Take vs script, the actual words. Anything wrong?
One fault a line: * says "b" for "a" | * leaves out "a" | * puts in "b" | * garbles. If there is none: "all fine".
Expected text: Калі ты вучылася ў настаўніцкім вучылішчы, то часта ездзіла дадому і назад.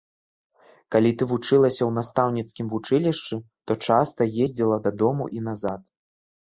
all fine